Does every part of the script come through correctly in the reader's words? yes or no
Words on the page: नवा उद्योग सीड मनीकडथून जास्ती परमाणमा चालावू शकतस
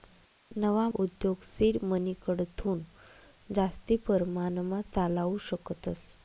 yes